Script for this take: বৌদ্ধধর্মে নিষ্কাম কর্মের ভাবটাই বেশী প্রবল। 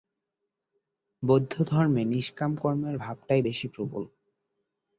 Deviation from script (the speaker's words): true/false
false